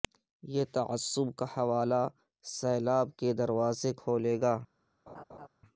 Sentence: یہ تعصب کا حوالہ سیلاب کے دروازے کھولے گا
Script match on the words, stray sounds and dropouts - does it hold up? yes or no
no